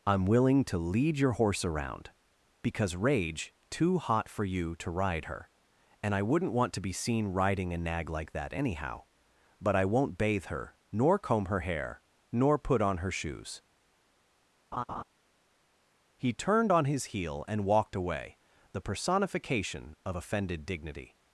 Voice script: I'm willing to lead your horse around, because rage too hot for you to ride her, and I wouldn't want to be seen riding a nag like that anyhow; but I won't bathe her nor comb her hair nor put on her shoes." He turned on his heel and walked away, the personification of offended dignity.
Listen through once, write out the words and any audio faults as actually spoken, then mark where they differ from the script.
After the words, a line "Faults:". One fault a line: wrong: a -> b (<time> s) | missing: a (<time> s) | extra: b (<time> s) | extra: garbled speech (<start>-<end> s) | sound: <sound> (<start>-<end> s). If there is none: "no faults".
I'm willing to lead your horse around, because rage too hot for you to ride her, and I wouldn't want to be seen riding a nag like that anyhow; but I won't bathe her nor comb her hair nor put on her shoes." He turned on his heel and walked away, the personification of offended dignity.
Faults:
sound: laugh (14.7-15.0 s)